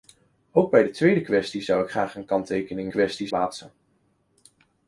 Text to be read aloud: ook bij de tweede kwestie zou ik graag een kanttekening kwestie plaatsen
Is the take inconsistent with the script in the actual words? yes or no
no